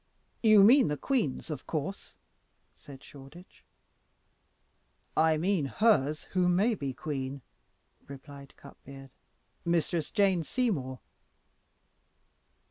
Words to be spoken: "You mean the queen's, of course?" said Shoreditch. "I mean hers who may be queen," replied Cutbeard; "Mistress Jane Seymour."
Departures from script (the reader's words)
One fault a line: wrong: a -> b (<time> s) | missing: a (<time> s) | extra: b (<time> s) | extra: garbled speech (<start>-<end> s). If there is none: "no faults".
no faults